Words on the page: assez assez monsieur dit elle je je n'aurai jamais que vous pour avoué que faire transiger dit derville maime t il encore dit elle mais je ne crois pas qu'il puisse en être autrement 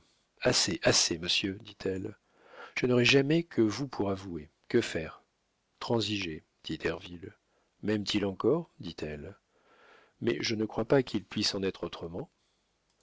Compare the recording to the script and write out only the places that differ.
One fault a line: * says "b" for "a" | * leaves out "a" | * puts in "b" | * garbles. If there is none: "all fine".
* leaves out "je"